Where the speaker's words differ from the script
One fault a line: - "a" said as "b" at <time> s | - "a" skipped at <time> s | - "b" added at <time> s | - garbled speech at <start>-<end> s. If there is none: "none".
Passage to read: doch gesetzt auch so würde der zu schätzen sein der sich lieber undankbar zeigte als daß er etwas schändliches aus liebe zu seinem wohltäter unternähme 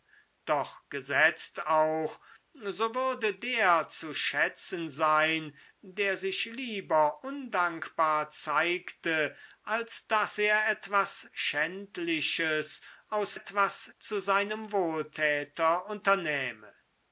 - "liebe" said as "etwas" at 13.3 s